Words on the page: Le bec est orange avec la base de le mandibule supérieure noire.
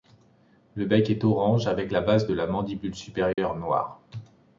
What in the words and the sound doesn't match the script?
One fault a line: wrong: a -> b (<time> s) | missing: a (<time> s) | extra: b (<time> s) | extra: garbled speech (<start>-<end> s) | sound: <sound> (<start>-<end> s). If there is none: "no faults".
wrong: le -> la (2.3 s)
sound: dropout (3.3-3.4 s)